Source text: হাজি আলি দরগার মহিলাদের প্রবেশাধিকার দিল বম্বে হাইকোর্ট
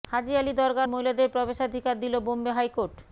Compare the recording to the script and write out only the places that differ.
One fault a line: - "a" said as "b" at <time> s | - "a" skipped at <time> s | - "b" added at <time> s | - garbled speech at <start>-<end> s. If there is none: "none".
none